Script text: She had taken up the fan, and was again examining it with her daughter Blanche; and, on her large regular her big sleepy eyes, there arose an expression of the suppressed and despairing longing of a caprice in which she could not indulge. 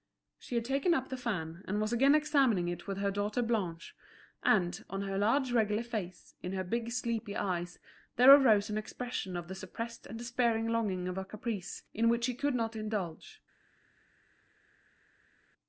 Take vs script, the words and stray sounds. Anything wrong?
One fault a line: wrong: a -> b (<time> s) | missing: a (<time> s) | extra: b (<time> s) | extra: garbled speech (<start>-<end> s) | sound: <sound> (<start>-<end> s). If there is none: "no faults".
extra: face in (5.8 s)